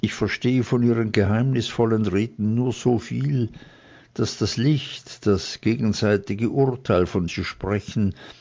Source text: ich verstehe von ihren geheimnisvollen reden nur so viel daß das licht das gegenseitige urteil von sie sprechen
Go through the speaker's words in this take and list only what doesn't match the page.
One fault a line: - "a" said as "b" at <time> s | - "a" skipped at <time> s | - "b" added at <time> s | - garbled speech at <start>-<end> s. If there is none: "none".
none